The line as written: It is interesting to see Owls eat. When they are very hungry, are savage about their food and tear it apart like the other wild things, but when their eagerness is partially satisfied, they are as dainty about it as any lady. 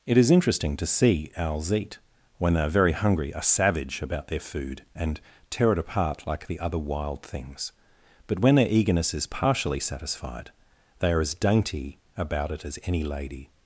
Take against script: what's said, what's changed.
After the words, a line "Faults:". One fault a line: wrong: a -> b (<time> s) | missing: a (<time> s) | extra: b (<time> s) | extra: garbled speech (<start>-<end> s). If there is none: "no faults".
It is interesting to see Owls eat. When they are very hungry, are savage about their food and tear it apart like the other wild things, but when their eagerness is partially satisfied, they are as dainty about it as any lady.
Faults:
no faults